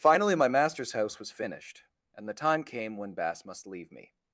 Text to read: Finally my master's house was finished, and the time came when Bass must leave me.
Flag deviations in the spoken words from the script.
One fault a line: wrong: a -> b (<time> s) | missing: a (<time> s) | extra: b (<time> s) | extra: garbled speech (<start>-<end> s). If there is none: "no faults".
no faults